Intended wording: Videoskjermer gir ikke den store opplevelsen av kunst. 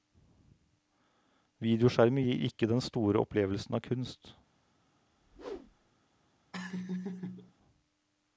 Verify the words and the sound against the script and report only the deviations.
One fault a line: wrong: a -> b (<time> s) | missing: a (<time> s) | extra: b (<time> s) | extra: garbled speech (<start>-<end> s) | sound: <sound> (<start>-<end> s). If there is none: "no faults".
sound: whoosh (5.1-5.9 s)
sound: laugh (6.5-7.5 s)